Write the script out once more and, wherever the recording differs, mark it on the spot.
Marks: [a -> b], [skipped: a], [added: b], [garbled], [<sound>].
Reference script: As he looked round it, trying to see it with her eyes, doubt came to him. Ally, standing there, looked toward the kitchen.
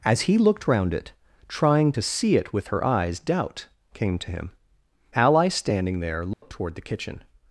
As he looked round it, trying to see it with her eyes, doubt came to him. Ally, standing there, looked [dropout] toward the kitchen.